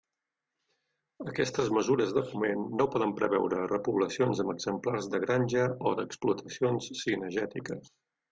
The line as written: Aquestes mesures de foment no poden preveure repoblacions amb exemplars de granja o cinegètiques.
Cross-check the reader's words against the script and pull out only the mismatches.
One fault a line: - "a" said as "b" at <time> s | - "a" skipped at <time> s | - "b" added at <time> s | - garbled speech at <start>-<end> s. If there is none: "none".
- "d'explotacions" added at 6.0 s